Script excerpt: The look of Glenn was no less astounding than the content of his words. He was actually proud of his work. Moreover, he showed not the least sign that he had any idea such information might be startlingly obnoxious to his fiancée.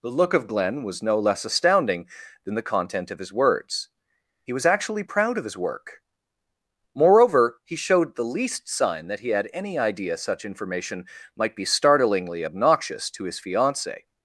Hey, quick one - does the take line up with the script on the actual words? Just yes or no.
no